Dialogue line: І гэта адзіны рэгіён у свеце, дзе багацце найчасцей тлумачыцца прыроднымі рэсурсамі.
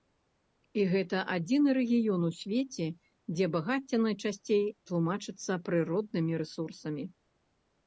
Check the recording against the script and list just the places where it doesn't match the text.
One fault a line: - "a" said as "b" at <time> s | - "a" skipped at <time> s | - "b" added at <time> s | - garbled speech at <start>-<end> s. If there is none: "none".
none